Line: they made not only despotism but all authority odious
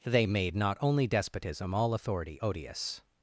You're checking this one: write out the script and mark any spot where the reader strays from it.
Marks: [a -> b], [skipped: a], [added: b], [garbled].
they made not only despotism [skipped: but] all authority odious